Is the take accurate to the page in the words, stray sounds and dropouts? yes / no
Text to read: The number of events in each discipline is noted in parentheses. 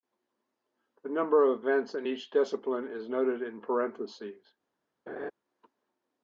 no